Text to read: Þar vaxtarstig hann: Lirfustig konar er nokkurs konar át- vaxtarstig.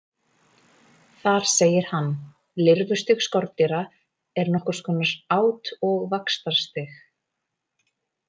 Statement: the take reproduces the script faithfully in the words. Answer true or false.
false